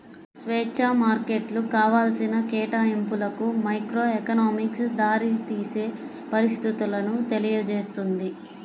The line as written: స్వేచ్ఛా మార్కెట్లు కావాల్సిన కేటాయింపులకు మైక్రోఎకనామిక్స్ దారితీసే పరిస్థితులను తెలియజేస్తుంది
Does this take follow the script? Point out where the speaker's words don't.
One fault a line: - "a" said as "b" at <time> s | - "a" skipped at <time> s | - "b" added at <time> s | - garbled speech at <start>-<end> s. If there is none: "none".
none